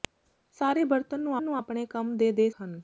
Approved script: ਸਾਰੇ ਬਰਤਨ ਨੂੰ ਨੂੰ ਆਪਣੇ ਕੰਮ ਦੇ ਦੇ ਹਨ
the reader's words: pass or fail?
pass